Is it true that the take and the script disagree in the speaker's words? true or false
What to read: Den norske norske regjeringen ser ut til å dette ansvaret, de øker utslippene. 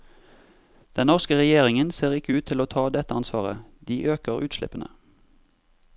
true